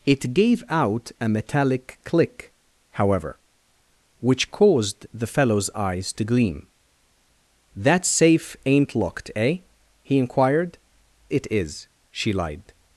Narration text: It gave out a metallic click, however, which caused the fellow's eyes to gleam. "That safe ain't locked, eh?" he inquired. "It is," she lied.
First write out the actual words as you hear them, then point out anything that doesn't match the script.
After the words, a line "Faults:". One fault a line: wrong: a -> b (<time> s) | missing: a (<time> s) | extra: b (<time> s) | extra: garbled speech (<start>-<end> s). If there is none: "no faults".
It gave out a metallic click, however, which caused the fellow's eyes to gleam. "That safe ain't locked, eh?" he inquired. "It is," she lied.
Faults:
no faults